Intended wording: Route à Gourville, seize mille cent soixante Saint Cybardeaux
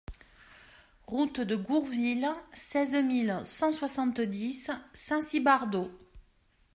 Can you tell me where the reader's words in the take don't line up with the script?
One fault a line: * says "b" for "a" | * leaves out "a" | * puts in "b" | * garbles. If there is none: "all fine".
* says "de" for "à"
* puts in "dix"